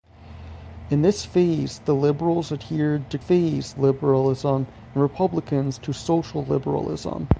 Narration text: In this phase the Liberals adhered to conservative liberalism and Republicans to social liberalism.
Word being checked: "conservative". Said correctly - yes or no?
no